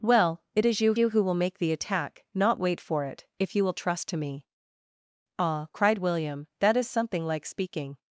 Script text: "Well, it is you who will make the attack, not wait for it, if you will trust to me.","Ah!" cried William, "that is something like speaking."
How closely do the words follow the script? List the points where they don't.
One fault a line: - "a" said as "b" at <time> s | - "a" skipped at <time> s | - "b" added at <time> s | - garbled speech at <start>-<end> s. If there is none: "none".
- "you" added at 1.0 s